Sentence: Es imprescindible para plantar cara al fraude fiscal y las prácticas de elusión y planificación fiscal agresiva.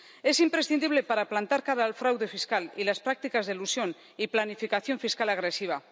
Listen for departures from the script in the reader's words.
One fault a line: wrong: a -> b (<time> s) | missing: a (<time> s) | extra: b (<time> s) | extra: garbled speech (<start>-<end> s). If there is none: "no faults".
no faults